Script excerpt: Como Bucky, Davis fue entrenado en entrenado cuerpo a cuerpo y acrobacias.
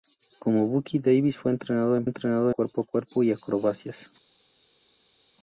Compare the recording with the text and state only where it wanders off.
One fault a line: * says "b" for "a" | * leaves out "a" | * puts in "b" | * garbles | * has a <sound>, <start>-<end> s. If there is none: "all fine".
all fine